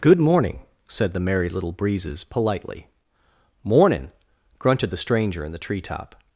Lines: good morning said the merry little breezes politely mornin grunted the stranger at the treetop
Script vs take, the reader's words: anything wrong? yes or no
yes